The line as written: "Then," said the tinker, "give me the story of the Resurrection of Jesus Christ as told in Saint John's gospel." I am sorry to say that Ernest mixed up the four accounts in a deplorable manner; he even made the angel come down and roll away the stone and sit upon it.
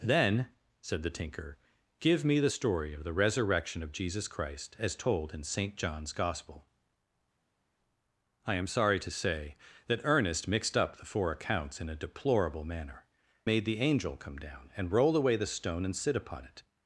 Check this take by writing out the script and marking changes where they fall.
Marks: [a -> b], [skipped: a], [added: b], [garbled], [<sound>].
"Then," said the tinker, "give me the story of the Resurrection of Jesus Christ as told in Saint John's gospel." I am sorry to say that Ernest mixed up the four accounts in a deplorable manner; [skipped: he even] made the angel come down and roll away the stone and sit upon it.